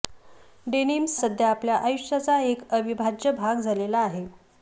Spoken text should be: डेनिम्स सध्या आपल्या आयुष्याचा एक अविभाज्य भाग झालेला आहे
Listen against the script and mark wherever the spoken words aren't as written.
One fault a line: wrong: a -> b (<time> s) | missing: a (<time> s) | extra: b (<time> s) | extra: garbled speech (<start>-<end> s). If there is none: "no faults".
no faults